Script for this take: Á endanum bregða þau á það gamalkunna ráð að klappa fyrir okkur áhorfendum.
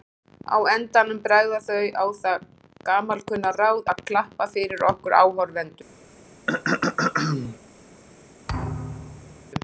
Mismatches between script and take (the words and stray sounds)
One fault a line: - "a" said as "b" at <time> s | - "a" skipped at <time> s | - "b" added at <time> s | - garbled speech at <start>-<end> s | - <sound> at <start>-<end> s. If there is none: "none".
- throat clearing at 6.5-7.6 s
- thud at 8.5-9.5 s